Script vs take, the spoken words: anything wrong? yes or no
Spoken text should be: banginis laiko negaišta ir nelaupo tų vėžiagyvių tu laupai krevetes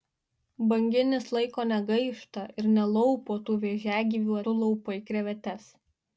no